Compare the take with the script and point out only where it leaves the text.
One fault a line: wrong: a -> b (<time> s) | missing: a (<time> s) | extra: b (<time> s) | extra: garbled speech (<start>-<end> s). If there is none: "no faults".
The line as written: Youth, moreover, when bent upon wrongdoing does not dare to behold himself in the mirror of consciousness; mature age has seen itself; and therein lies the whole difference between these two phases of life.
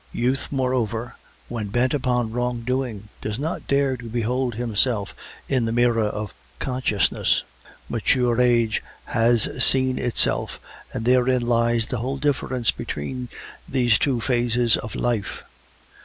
no faults